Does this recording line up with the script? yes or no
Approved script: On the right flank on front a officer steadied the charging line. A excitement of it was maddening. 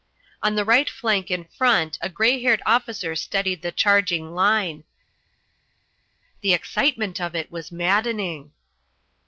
no